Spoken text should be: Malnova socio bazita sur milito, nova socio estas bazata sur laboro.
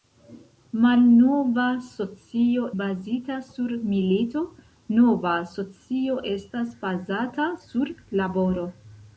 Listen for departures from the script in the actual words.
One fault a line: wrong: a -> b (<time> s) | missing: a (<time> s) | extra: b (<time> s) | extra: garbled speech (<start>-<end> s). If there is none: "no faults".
no faults